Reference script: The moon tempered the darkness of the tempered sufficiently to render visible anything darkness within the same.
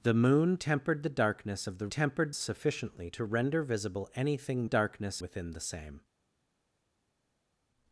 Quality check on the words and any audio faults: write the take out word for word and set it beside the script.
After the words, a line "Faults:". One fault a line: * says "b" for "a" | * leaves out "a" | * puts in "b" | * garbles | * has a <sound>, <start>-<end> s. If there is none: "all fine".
The moon tempered the darkness of the tempered sufficiently to render visible anything darkness within the same.
Faults:
all fine